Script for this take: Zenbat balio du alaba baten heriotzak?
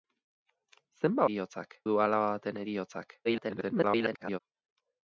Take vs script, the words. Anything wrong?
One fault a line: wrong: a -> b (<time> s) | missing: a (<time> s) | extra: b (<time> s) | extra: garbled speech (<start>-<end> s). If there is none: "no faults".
wrong: balio -> heriotzak (1.3 s)
extra: garbled speech (3.2-4.4 s)